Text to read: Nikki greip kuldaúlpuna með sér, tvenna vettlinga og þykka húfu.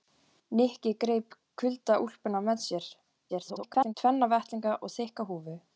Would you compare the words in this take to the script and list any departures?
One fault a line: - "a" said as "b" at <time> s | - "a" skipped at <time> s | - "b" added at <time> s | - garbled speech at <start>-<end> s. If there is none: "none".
- garbled speech at 3.3-3.9 s